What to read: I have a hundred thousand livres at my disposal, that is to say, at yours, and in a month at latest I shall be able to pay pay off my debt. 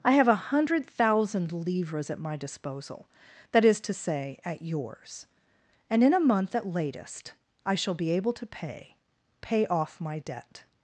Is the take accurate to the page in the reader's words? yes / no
yes